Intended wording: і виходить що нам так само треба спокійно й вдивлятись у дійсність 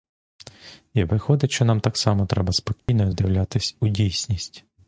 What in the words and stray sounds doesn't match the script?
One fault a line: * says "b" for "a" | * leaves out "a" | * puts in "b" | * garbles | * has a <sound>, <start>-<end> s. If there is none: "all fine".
* has a dropout, 2.8-2.9 s